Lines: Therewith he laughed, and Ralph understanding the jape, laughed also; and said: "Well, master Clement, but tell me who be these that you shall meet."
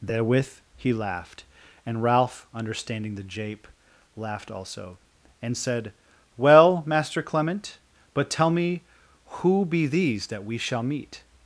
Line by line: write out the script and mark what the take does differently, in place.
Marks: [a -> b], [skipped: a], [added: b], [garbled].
Therewith he laughed, and Ralph understanding the jape, laughed also; and said: "Well, master Clement, but tell me who be these that [you -> we] shall meet."